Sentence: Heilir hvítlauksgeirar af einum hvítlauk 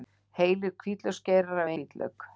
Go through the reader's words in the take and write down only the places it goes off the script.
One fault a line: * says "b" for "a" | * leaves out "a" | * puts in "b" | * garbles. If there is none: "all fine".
* leaves out "einum"